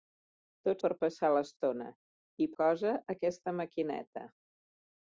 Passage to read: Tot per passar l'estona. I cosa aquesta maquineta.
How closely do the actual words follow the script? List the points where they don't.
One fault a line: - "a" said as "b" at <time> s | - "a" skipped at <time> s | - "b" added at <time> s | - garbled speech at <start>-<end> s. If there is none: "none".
none